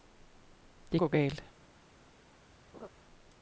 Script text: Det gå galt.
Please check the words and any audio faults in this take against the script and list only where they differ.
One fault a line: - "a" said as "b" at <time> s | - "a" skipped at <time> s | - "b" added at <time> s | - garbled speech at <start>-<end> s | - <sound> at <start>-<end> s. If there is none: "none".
- laugh at 2.7-2.9 s